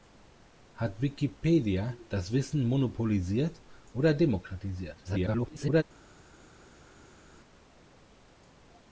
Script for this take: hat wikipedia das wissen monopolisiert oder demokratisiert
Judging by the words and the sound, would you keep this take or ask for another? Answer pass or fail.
fail